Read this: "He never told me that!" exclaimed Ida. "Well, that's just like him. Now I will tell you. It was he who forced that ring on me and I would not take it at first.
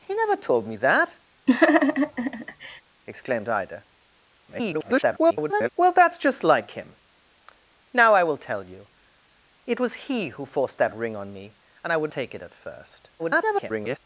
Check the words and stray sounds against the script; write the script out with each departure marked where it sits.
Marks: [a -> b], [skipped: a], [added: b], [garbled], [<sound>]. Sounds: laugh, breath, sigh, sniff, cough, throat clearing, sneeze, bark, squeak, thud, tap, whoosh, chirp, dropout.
"He never told me that!" [laugh] exclaimed Ida. [garbled] "Well, that's just like him. Now I will tell you. It was he who forced that ring on me and I would [skipped: not] take it at first. [garbled]